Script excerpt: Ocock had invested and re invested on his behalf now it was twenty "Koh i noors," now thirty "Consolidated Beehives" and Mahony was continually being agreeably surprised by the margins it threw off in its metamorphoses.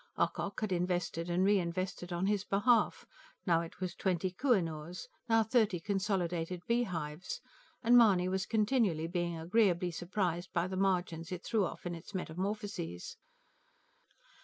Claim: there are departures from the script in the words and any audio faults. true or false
false